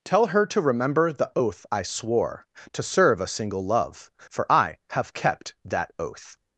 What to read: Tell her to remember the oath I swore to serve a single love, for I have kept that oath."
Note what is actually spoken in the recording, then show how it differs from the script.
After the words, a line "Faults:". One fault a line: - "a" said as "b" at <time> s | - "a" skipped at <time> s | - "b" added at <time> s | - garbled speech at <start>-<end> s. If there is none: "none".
Tell her to remember the oath I swore to serve a single love, for I have kept that oath."
Faults:
none